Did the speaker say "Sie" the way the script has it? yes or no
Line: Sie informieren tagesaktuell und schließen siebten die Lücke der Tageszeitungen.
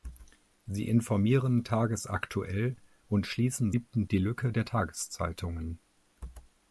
yes